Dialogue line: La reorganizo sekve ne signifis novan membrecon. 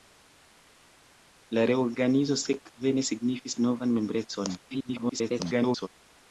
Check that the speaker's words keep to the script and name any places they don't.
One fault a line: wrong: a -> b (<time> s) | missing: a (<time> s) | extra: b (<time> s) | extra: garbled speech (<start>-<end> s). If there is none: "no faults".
extra: garbled speech (4.7-5.9 s)